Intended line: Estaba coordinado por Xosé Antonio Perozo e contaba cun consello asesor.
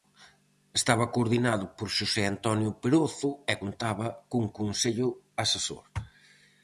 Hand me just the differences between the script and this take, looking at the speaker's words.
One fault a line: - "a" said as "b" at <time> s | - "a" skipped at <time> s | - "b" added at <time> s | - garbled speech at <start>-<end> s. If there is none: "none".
none